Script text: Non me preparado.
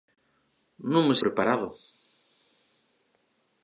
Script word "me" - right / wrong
right